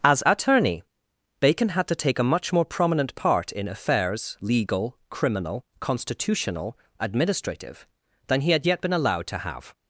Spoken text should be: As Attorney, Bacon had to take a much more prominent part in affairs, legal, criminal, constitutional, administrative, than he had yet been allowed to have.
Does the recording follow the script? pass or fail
pass